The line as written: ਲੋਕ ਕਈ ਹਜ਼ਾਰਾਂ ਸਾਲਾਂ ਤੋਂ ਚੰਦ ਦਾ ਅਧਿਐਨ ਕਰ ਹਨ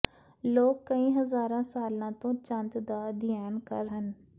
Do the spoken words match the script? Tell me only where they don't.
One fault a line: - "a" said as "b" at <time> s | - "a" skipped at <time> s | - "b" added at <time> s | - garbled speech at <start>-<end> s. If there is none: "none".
none